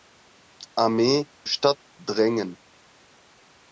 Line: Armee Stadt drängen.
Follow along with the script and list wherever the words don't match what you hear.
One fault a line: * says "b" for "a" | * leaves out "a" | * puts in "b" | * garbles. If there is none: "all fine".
all fine